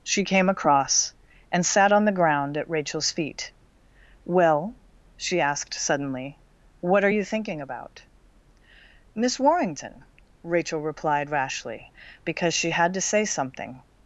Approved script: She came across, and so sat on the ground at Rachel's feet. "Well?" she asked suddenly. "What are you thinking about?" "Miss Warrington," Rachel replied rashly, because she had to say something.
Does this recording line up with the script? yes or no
no